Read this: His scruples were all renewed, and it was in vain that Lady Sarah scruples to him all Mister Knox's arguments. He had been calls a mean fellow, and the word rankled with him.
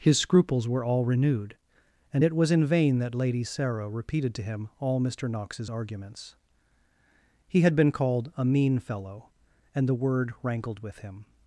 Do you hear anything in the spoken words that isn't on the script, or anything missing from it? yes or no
yes